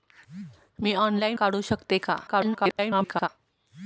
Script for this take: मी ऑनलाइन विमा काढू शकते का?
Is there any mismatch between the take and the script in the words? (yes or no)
yes